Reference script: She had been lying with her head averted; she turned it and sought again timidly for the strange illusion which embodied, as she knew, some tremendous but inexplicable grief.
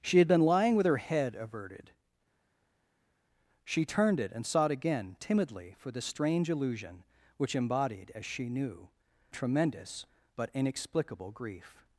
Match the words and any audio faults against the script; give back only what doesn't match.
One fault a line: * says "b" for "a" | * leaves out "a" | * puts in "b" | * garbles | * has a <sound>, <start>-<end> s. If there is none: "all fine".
* leaves out "some"